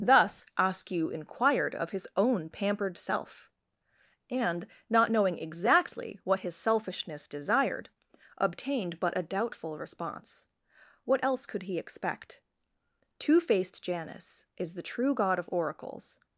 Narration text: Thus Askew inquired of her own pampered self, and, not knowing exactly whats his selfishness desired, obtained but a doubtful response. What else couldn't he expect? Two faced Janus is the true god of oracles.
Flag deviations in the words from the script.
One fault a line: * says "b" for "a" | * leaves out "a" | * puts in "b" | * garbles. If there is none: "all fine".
* says "his" for "her"
* says "what" for "whats"
* says "could" for "couldn't"